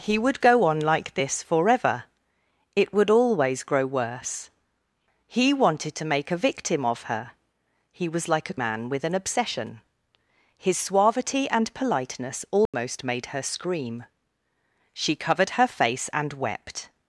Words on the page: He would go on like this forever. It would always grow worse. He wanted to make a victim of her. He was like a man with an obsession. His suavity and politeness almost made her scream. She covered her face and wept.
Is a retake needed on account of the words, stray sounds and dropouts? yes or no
yes